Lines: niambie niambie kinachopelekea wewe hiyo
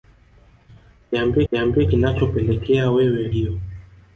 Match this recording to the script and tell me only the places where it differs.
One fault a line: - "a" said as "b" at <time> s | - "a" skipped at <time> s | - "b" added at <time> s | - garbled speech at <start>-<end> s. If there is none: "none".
none